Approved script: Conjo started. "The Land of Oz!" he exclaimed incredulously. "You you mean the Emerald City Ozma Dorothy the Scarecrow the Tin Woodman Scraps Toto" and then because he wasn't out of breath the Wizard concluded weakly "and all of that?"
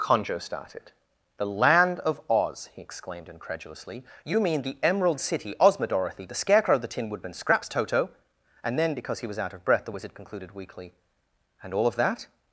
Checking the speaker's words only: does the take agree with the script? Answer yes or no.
no